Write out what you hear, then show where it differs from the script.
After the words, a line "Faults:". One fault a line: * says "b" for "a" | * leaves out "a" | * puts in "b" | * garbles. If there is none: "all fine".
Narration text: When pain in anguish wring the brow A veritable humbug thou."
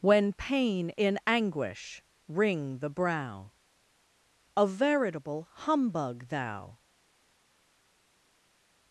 When pain in anguish wring the brow A veritable humbug thou."
Faults:
all fine